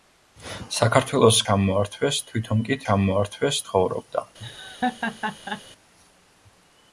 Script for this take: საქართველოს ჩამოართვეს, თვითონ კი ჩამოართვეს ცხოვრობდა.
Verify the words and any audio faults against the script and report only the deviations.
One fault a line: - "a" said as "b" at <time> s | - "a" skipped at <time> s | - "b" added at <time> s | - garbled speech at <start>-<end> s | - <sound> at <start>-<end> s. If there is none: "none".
- laugh at 4.4-5.6 s